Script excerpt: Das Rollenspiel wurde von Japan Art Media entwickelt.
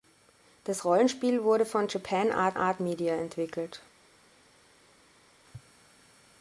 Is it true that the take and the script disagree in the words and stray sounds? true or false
true